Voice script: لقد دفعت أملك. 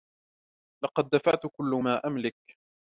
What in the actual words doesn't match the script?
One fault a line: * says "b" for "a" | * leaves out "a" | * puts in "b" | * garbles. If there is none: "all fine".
* puts in "كل ما"